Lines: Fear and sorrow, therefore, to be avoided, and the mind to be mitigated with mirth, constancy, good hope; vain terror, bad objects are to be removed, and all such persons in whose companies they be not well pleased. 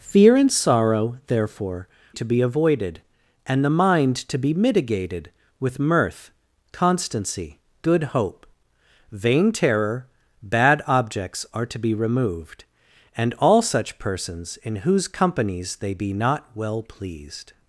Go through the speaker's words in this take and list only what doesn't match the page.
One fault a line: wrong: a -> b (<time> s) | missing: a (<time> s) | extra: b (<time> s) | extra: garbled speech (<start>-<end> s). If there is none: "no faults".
no faults